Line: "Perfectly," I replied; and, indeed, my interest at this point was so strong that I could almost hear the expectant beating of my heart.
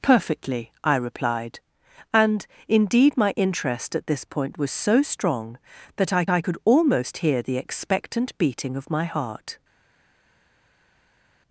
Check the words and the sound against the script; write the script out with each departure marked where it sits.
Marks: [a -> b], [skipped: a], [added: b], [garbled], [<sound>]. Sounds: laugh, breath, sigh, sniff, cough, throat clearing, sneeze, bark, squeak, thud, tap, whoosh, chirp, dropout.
"Perfectly," I replied; and, indeed, my interest at this point was so strong that I [added: I] could almost hear the expectant beating of my heart.